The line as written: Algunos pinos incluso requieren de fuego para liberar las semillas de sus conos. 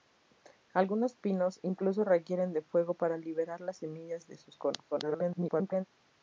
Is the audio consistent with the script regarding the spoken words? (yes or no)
no